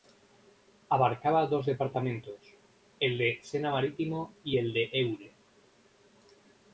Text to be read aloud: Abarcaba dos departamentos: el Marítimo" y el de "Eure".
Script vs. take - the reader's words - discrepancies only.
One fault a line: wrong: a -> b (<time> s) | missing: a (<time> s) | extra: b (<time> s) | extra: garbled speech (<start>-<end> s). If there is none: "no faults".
extra: de Sena (3.2 s)